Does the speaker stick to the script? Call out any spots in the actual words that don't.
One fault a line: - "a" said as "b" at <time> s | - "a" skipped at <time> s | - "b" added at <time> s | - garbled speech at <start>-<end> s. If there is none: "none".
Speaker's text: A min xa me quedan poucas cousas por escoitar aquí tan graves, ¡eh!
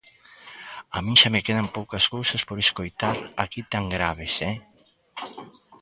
none